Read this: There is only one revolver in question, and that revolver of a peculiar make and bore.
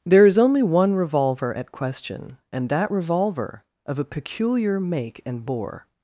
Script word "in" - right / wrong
wrong